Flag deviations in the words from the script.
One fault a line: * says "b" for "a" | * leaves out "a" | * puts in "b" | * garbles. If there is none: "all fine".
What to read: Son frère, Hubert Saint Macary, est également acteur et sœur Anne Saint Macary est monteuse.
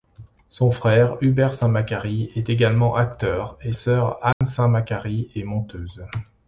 all fine